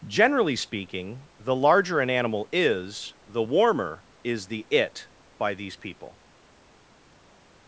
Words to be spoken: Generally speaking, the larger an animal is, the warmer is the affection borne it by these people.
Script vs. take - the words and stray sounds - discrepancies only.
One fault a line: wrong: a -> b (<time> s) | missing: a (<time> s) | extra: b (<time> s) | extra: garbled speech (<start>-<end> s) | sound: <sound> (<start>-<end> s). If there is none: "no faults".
missing: affection borne (4.7 s)